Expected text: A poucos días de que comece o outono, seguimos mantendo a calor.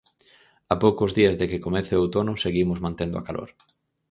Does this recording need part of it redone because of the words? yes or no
no